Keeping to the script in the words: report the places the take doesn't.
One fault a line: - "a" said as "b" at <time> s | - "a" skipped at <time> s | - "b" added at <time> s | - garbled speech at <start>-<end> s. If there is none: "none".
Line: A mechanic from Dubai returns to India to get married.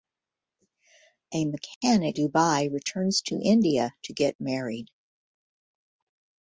- "from" skipped at 2.2 s